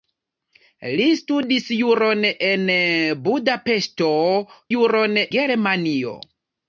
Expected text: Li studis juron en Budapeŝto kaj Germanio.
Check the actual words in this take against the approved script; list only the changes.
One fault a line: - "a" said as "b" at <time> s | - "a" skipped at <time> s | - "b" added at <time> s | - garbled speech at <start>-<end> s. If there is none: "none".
- "kaj" said as "juron" at 4.7 s